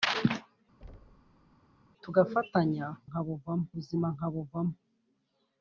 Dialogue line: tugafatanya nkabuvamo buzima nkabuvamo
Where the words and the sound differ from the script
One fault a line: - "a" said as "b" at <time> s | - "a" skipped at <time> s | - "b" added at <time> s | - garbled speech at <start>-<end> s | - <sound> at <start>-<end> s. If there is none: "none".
- thud at 0.8-1.6 s